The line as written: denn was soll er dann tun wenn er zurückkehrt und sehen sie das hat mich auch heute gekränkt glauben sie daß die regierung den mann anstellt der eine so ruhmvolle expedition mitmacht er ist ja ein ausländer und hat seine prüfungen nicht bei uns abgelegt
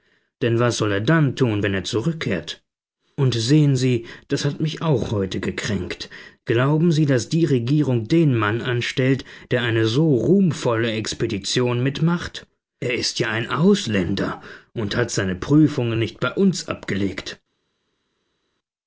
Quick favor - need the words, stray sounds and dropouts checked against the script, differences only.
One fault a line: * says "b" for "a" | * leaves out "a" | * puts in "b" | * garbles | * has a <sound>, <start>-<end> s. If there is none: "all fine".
all fine